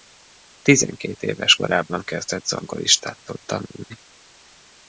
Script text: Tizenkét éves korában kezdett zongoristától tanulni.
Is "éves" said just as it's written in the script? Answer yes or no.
yes